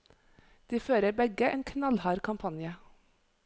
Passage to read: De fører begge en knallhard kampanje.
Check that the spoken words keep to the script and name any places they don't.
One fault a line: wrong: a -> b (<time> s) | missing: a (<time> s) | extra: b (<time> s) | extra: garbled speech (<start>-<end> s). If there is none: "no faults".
no faults